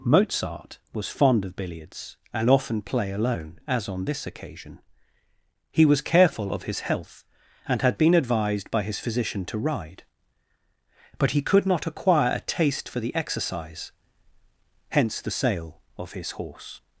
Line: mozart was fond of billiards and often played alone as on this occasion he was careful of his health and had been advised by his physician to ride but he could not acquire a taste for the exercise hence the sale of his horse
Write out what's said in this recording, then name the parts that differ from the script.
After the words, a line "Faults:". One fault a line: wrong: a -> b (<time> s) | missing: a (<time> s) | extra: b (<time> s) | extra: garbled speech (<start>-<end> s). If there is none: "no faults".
mozart was fond of billiards and often play alone as on this occasion he was careful of his health and had been advised by his physician to ride but he could not acquire a taste for the exercise hence the sale of his horse
Faults:
wrong: played -> play (2.8 s)